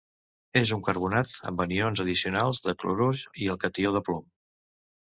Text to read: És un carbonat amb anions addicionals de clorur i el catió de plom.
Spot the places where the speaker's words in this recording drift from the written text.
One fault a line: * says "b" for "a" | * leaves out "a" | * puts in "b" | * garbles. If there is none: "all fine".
all fine